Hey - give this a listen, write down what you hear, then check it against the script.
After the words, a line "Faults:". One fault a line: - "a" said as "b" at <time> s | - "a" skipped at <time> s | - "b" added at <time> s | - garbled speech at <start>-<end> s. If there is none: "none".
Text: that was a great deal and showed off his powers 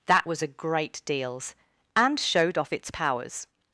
that was a great deals and showed off its powers
Faults:
- "deal" said as "deals" at 1.0 s
- "his" said as "its" at 2.7 s